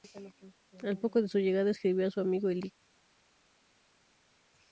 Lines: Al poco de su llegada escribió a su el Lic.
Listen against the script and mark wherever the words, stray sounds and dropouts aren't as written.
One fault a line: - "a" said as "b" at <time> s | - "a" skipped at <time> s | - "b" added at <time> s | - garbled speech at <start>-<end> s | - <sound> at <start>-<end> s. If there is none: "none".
- "amigo" added at 2.2 s